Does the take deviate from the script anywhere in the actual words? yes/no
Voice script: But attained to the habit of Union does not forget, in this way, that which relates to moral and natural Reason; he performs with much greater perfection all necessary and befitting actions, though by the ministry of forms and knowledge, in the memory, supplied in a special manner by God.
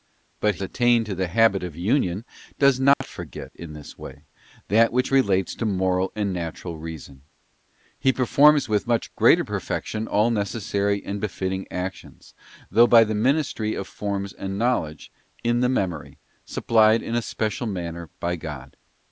no